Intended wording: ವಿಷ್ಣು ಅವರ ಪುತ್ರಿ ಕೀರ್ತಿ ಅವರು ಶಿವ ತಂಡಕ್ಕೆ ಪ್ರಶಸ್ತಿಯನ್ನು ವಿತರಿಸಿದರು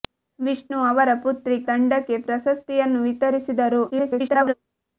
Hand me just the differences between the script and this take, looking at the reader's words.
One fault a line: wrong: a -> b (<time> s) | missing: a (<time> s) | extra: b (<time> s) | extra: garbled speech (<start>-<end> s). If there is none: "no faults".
missing: ಕೀರ್ತಿ ಅವರು ಶಿವ (1.6 s)
extra: garbled speech (3.9-4.5 s)